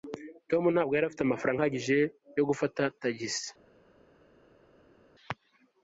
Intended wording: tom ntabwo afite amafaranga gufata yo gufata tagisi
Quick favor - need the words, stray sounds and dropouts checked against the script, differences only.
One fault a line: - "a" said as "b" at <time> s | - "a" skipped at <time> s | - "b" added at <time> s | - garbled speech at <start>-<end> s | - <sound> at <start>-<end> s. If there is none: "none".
- "yari" added at 0.9 s
- "gufata" said as "ahagije" at 1.6 s